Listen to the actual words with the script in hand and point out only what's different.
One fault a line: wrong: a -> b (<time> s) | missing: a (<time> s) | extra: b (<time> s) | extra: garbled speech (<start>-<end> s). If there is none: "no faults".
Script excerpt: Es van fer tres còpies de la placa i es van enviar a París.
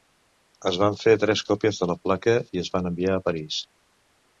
no faults